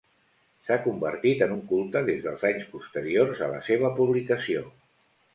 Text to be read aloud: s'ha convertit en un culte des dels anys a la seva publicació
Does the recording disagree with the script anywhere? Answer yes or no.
yes